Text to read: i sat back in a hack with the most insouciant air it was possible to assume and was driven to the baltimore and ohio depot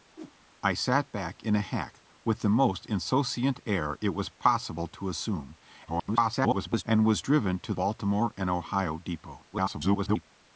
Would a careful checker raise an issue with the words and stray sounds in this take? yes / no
yes